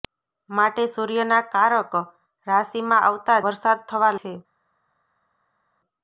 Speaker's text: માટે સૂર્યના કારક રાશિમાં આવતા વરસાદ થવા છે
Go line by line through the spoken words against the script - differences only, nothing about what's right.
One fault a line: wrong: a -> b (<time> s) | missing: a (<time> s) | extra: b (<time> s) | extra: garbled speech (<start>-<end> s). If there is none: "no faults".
no faults